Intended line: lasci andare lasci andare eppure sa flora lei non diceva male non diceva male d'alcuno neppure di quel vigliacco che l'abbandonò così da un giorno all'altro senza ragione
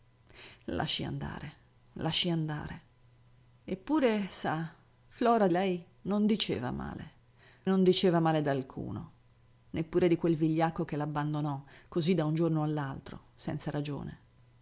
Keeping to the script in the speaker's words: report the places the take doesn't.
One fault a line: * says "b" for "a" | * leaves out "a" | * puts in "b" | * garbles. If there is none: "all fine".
all fine